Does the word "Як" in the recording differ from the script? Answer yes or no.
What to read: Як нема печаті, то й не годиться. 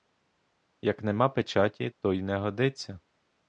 no